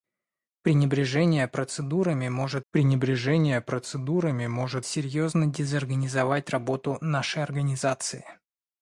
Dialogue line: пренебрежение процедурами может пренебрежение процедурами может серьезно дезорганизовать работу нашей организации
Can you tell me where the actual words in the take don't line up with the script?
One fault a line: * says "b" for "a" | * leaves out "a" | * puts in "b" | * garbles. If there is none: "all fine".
all fine